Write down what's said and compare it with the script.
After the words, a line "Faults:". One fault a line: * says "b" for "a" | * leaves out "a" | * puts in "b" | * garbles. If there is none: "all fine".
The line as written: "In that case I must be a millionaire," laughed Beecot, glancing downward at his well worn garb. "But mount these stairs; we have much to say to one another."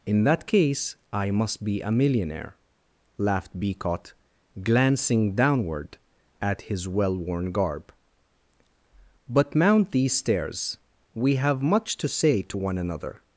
"In that case I must be a millionaire," laughed Beecot, glancing downward at his well worn garb. "But mount these stairs; we have much to say to one another."
Faults:
all fine